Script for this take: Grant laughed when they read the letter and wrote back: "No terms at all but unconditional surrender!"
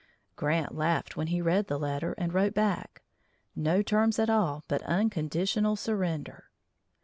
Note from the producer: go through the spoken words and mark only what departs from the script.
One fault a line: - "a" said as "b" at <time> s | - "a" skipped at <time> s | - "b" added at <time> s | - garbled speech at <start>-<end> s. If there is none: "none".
- "they" said as "he" at 1.3 s